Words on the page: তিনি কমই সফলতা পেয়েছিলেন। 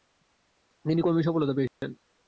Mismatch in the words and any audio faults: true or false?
true